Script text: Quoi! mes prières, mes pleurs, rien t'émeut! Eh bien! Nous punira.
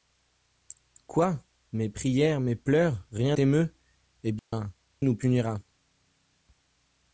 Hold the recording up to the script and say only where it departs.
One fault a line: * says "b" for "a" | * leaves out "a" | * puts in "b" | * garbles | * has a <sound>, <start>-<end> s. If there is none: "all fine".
* has a dropout, 4.4-4.5 s